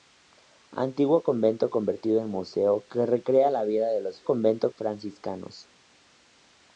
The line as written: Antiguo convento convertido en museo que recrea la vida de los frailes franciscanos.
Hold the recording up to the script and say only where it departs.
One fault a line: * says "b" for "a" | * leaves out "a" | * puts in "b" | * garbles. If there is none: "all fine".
* says "convento" for "frailes"